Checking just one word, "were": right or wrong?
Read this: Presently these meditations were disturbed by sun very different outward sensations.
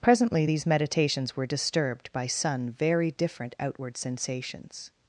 right